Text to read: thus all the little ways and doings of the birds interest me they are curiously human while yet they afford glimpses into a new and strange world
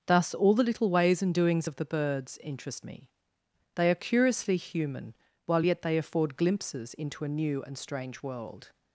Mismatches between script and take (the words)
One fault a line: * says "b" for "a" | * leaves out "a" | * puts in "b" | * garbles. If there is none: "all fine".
all fine